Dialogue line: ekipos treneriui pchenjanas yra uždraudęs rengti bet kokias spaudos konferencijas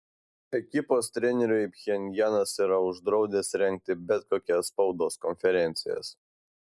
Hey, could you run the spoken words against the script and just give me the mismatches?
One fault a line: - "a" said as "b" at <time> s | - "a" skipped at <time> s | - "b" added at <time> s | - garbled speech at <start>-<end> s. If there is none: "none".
none